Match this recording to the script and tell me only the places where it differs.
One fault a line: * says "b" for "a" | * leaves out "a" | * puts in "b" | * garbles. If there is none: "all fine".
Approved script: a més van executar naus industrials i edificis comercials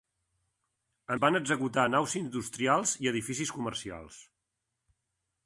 * leaves out "més"